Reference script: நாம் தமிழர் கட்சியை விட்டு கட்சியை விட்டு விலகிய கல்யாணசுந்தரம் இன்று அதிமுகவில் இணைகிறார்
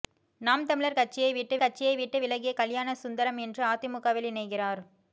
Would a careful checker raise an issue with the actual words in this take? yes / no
no